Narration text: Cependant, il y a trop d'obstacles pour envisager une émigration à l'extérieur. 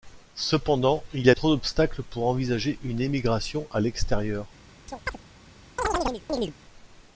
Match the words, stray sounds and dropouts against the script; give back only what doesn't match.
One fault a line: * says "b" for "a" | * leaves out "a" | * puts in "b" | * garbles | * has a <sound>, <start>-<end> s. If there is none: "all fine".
* has a chirp, 4.9-5.2 s
* has a chirp, 5.8-6.5 s